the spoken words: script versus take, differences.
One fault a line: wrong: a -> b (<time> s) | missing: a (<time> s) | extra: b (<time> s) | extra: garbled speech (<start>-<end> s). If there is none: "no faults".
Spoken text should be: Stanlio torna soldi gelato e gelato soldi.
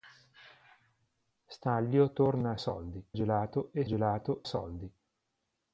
no faults